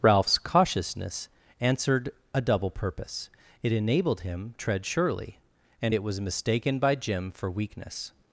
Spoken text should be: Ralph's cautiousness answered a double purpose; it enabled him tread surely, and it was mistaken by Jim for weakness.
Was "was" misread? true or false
false